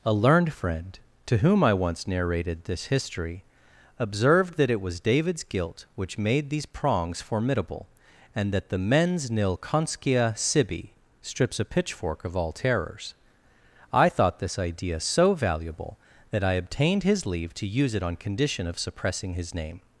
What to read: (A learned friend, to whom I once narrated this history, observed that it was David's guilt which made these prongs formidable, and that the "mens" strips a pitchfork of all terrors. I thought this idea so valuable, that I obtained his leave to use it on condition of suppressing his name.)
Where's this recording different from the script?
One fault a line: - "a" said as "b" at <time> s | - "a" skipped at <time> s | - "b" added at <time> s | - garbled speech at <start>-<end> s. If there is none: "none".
- "nil conscia sibi" added at 9.3 s